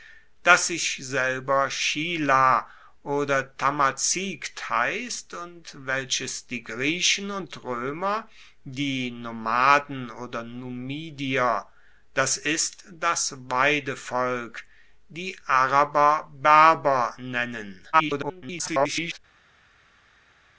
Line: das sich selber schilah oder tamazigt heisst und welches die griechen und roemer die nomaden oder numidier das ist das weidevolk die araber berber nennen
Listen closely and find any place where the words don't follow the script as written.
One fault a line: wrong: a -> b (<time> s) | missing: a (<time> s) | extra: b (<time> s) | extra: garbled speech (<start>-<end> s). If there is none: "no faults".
extra: garbled speech (17.9-19.2 s)